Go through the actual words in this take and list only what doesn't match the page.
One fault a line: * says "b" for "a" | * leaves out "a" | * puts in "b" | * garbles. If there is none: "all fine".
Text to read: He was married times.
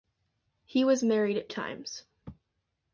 all fine